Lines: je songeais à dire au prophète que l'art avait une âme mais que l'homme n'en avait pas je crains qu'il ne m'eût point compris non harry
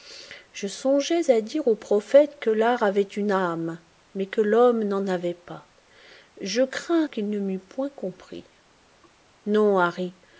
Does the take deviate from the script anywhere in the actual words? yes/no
no